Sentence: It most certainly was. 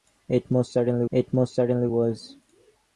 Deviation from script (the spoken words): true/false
true